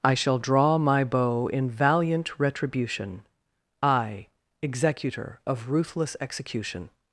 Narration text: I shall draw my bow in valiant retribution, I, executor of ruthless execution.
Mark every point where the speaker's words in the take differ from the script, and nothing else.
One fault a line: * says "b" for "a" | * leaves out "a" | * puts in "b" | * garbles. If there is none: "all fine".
all fine